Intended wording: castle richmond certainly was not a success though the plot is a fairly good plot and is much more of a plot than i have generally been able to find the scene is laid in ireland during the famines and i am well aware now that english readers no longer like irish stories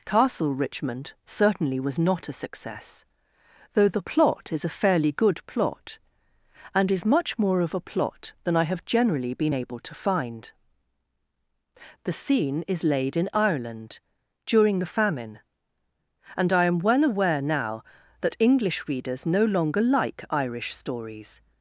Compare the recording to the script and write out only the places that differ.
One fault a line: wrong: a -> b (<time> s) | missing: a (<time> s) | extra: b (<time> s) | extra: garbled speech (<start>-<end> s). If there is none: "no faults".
wrong: famines -> famine (14.9 s)